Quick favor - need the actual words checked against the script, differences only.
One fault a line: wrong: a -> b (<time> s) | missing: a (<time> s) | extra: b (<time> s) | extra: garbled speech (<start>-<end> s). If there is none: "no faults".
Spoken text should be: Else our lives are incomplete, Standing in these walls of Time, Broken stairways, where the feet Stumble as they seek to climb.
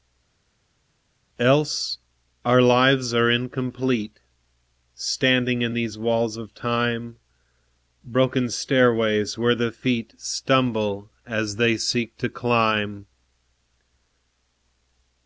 no faults